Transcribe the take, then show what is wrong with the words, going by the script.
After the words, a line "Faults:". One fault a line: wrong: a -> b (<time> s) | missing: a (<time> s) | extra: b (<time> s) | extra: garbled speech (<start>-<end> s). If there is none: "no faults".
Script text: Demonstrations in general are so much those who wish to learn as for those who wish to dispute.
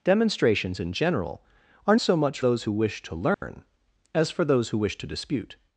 Demonstrations in general are so much those who wish to learn as for those who wish to dispute.
Faults:
no faults